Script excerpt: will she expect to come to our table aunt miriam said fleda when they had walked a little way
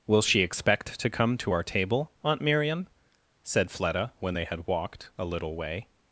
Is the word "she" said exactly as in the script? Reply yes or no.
yes